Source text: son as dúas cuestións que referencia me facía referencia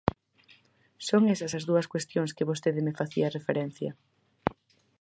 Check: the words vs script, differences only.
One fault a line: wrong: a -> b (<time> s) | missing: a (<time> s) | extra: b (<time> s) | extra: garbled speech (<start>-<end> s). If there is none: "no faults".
extra: esas (1.3 s)
wrong: referencia -> vostede (2.5 s)